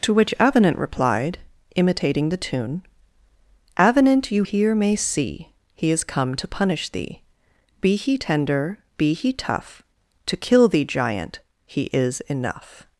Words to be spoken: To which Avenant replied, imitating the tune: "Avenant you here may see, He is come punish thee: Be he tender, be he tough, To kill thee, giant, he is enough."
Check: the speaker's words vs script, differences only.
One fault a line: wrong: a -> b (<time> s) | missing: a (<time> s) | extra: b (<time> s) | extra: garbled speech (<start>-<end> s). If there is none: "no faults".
extra: to (6.4 s)